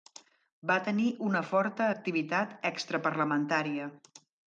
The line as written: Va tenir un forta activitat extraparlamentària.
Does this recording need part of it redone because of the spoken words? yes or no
yes